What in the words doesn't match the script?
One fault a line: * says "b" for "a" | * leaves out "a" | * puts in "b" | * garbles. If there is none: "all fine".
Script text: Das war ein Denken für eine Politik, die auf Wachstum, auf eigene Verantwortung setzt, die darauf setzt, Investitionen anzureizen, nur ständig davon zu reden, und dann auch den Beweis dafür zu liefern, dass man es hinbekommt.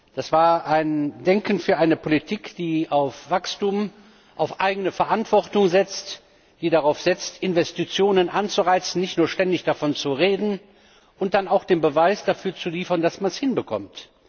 * puts in "nicht"